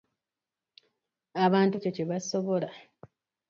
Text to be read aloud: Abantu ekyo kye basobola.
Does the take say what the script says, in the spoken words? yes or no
yes